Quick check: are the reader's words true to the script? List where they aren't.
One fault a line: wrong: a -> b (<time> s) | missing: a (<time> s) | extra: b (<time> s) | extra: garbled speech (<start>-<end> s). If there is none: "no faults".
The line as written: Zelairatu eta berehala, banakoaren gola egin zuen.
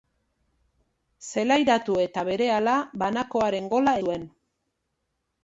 missing: egin (4.0 s)